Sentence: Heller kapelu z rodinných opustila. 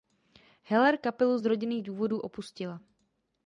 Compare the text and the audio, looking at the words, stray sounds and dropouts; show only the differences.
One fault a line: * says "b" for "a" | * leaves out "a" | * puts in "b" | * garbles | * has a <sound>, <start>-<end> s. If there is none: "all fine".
* puts in "důvodů"